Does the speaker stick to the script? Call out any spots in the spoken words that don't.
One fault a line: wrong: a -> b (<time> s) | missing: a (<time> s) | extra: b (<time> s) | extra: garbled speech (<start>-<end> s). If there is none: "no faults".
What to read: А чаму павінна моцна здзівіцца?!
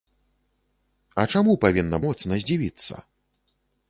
no faults